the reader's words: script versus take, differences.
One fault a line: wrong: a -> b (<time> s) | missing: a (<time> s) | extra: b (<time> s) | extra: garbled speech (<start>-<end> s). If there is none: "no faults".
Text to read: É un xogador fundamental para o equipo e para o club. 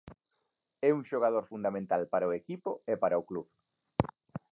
no faults